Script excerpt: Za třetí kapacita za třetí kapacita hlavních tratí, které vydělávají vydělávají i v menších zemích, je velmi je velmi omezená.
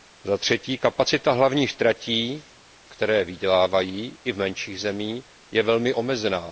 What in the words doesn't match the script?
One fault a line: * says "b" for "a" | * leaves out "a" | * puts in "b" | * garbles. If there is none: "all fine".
* leaves out "za třetí kapacita"
* leaves out "vydělávají"
* leaves out "je velmi"